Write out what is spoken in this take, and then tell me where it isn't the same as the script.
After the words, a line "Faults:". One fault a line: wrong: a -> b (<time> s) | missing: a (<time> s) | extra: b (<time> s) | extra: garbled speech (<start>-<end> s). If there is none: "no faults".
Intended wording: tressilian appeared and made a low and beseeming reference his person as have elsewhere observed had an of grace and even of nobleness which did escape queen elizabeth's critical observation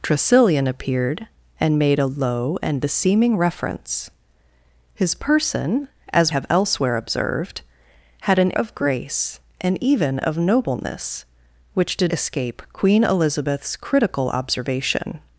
tressilian appeared and made a low and beseeming reference his person as have elsewhere observed had an of grace and even of nobleness which did escape queen elizabeth's critical observation
Faults:
no faults